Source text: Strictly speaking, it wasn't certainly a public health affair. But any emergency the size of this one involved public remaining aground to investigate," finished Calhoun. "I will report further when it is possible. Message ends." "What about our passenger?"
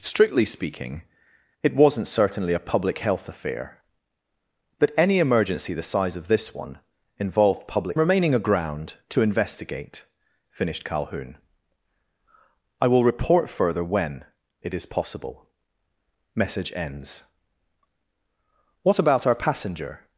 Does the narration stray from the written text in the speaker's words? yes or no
no